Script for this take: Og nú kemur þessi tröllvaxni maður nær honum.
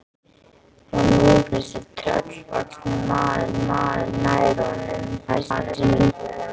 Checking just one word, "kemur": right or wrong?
wrong